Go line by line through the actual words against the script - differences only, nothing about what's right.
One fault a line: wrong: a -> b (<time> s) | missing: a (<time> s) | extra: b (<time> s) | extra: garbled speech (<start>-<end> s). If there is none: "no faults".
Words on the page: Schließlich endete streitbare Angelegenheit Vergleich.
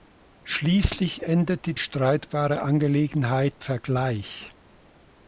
no faults